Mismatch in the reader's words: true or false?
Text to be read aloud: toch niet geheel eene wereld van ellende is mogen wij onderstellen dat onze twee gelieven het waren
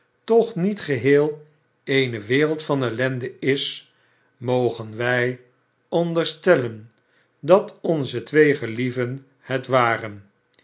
false